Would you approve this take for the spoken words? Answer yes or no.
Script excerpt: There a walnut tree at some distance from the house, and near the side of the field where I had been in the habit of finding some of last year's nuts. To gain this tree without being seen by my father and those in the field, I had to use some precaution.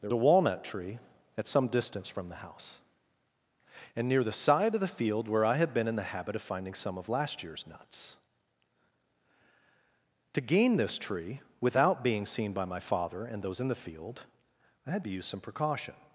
yes